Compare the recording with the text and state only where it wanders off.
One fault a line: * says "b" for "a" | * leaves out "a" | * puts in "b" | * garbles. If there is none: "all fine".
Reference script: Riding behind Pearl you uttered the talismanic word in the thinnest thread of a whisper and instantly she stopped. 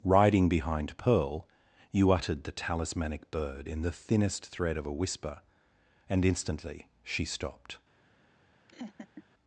* says "bird" for "word"